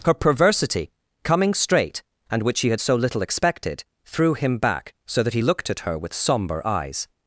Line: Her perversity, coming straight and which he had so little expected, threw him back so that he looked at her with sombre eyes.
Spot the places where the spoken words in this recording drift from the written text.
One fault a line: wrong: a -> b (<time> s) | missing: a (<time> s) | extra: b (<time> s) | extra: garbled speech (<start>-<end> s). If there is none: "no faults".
no faults